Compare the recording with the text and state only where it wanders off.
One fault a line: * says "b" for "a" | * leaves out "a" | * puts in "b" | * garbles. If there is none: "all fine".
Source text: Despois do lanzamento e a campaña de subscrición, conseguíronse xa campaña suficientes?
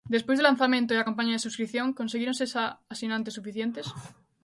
* says "asinantes" for "campaña"